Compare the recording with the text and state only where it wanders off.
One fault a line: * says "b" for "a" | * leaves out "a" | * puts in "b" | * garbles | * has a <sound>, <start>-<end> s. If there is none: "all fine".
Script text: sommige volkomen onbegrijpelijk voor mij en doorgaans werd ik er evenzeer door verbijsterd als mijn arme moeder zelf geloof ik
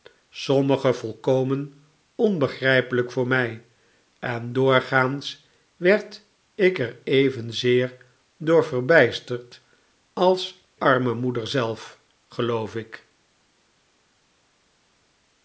* leaves out "mijn"